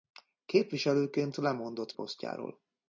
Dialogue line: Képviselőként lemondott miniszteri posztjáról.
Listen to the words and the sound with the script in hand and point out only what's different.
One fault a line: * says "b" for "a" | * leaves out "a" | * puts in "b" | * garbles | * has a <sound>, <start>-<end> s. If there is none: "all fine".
* leaves out "miniszteri"